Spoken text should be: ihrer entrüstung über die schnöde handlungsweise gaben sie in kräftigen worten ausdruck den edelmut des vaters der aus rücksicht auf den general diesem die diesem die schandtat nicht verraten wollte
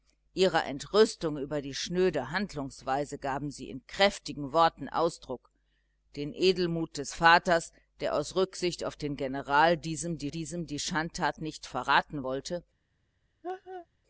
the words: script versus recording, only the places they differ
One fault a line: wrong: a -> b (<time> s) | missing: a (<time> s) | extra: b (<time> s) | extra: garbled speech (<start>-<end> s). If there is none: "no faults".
no faults